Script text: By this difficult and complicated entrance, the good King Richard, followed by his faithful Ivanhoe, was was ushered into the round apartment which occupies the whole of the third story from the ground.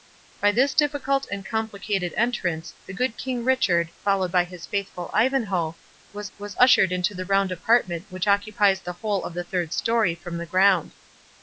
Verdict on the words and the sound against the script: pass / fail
pass